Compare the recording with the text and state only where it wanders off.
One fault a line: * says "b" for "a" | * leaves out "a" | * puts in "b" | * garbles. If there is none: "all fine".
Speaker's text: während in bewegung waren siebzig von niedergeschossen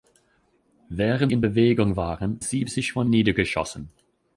all fine